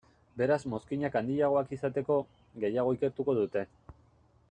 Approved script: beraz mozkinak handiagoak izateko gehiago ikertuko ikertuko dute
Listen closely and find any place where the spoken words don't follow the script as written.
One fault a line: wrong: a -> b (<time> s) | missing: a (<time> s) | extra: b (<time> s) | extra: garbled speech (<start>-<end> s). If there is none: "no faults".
missing: ikertuko (3.4 s)